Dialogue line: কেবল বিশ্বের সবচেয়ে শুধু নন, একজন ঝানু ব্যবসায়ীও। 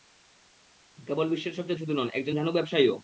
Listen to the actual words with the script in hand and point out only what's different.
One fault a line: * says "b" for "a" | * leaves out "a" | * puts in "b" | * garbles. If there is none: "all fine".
all fine